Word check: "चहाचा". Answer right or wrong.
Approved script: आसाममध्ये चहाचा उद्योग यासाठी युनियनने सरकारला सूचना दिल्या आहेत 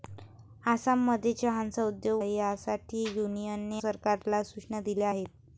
right